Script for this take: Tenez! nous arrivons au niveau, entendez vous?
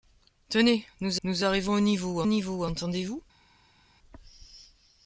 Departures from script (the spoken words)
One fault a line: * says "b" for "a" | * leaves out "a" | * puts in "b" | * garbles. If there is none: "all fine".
* puts in "nous"
* puts in "niveau"